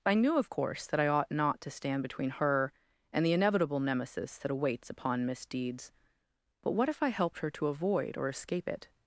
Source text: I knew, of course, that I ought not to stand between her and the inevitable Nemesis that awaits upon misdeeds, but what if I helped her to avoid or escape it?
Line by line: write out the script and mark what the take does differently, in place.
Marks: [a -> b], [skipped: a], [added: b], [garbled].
I knew, of course, that I ought not to stand between her and the inevitable Nemesis that awaits upon misdeeds, but what if I helped her to avoid or escape it?